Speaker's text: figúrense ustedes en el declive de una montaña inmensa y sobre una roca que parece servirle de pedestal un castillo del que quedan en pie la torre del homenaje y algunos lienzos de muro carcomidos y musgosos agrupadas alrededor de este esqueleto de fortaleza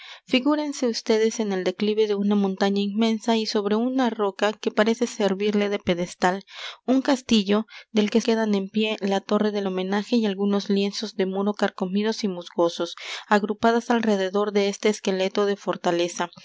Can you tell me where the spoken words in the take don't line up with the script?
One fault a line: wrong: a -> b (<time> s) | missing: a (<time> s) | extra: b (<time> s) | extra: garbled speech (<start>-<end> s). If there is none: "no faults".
no faults